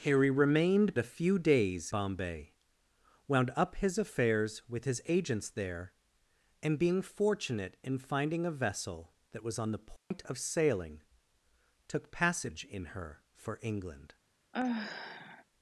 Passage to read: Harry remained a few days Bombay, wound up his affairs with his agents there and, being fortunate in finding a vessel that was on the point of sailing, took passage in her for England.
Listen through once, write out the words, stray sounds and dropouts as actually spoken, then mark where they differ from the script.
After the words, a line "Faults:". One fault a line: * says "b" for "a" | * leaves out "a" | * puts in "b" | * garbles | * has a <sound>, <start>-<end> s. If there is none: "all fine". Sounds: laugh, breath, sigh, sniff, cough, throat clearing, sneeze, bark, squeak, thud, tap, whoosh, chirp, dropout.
Harry remained a few days Bombay, wound up his affairs with his agents there and, being fortunate in finding a vessel that was on the point of sailing, took passage in her for England.
Faults:
* has a dropout, 10.0-10.1 s
* has a sigh, 14.5-15.4 s